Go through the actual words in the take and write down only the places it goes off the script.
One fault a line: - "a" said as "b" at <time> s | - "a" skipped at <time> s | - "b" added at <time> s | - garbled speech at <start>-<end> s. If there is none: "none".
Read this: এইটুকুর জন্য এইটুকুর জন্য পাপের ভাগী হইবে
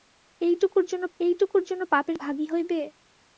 none